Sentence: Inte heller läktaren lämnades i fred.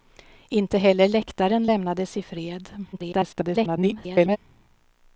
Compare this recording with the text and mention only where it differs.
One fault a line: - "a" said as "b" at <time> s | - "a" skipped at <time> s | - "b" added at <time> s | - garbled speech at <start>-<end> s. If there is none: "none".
- garbled speech at 2.9-4.4 s